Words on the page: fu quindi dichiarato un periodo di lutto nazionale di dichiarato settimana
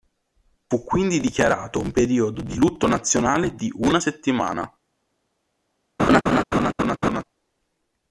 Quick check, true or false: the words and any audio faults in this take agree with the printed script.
false